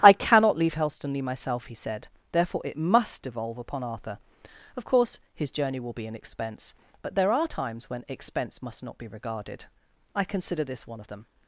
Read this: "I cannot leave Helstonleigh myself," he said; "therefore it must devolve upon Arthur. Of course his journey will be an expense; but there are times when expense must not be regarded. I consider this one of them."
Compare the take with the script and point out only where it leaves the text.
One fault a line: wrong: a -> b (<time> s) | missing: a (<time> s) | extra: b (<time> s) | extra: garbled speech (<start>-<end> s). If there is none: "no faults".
no faults